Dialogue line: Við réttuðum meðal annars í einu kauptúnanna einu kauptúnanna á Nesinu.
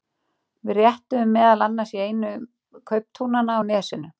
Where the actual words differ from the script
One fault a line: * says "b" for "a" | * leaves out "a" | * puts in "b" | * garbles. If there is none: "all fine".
* leaves out "einu kauptúnanna"